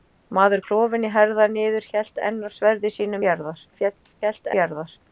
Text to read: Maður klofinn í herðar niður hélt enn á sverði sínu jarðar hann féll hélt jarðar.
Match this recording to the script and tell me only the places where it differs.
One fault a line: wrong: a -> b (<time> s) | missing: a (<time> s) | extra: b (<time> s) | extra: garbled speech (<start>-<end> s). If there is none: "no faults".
no faults